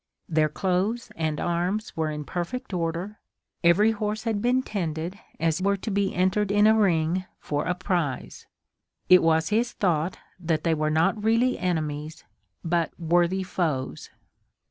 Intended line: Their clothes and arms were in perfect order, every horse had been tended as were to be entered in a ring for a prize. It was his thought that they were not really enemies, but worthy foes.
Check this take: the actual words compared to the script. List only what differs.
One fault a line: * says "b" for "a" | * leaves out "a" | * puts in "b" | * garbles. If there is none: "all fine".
all fine